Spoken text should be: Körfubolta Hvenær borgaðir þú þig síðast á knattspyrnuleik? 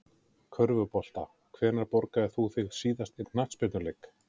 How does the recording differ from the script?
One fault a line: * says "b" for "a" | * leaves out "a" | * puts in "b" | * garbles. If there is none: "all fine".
all fine